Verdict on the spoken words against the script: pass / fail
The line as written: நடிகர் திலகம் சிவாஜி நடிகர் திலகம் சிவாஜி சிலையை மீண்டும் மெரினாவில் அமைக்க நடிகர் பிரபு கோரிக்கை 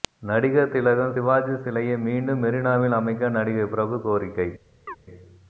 fail